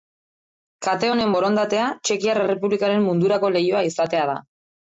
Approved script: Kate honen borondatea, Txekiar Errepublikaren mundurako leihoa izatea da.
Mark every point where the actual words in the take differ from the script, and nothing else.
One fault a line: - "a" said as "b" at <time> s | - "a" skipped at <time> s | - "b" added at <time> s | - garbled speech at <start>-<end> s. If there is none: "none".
none